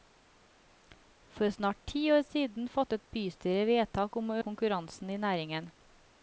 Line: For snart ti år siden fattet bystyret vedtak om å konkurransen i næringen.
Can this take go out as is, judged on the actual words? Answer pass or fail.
pass